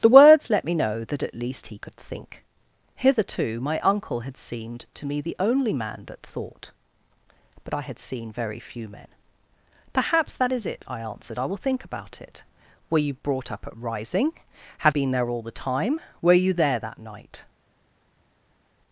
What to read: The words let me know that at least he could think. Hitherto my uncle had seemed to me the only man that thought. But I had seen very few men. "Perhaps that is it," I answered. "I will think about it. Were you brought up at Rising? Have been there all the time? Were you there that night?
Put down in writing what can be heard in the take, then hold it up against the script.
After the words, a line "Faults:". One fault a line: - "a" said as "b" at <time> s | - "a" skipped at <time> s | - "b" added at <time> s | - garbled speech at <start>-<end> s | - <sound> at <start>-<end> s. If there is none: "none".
The words let me know that at least he could think. Hitherto my uncle had seemed to me the only man that thought. But I had seen very few men. "Perhaps that is it," I answered. "I will think about it. Were you brought up at Rising? Have been there all the time? Were you there that night?
Faults:
none